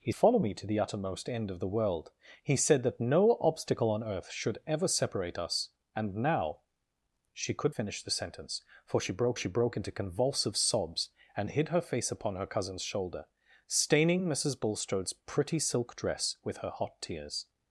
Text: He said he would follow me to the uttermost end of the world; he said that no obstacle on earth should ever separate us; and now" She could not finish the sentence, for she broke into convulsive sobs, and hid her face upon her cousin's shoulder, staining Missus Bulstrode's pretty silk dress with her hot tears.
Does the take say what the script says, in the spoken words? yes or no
no